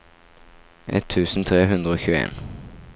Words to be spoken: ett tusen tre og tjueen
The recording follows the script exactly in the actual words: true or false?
false